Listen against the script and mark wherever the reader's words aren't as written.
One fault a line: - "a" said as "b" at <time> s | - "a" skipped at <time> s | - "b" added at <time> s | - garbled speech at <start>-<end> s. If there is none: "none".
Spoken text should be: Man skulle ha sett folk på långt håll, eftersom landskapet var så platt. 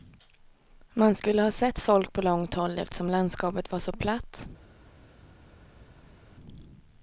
none